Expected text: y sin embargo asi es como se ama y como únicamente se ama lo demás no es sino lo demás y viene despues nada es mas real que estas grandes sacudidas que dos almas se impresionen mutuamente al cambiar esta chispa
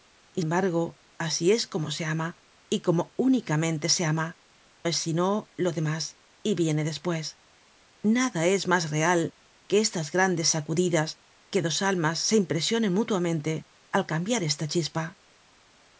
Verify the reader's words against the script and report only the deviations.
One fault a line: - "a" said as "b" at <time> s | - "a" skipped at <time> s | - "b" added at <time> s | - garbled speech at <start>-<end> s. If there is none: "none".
- "sin" skipped at 0.4 s
- "lo demás no" skipped at 4.4 s